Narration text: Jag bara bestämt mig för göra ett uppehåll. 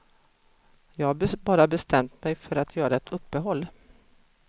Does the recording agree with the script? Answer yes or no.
no